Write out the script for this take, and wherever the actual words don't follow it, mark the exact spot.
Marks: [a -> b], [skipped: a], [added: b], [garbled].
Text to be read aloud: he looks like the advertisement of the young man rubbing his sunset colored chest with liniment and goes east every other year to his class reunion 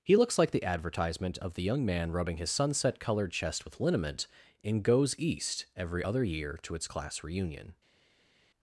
he looks like the advertisement of the young man rubbing his sunset colored chest with liniment [and -> in] goes east every other year to [his -> its] class reunion